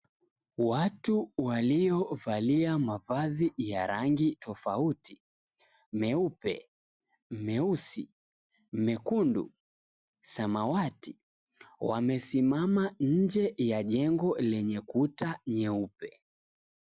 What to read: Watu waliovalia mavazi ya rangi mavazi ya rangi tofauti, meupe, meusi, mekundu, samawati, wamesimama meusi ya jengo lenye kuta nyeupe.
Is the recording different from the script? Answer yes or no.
yes